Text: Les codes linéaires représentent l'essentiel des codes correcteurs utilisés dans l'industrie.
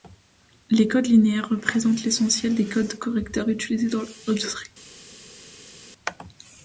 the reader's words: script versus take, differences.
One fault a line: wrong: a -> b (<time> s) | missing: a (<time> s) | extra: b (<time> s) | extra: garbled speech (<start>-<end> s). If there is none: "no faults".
no faults